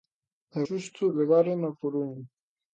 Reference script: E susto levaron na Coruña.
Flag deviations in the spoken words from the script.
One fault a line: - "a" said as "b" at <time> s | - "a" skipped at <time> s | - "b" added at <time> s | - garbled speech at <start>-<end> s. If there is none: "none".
none